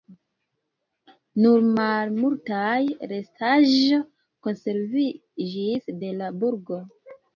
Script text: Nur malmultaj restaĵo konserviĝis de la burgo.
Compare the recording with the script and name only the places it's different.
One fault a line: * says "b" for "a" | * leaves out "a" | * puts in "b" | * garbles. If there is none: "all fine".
all fine